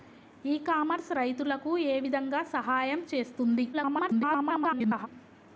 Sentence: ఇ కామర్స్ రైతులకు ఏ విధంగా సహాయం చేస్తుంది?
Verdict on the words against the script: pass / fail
fail